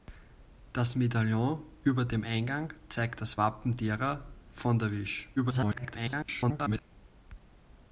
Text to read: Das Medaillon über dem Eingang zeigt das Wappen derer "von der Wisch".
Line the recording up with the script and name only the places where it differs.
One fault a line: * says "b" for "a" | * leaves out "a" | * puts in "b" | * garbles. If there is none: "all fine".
* garbles